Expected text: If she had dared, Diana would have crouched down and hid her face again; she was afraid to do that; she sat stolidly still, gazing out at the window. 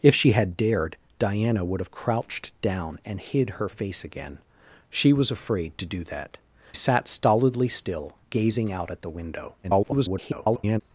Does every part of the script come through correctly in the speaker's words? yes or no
no